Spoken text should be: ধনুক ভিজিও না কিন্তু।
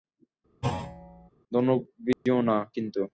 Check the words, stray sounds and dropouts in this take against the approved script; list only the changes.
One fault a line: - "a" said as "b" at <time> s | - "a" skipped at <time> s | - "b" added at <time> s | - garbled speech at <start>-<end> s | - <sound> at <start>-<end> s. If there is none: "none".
- thud at 0.6-1.3 s
- dropout at 2.1-2.3 s